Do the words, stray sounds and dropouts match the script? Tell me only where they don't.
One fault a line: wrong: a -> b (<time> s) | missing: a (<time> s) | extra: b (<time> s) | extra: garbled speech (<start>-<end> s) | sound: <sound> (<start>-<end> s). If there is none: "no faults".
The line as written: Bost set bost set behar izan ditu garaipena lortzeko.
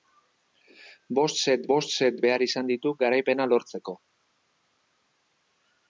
no faults